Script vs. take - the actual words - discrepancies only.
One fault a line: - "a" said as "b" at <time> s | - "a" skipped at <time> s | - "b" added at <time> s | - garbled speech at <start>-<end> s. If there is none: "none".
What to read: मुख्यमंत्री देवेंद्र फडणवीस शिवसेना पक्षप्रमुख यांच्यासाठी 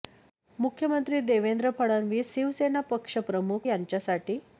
none